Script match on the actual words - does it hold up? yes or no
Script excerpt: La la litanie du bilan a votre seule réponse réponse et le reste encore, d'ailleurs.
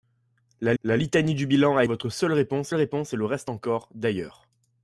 yes